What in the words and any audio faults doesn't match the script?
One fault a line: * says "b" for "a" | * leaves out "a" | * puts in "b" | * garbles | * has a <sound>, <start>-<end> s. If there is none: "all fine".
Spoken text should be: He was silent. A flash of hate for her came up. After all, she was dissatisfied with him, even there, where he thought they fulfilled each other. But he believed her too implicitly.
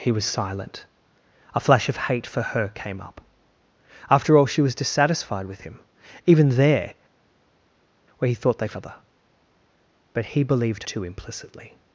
* leaves out "fulfilled each"
* leaves out "her"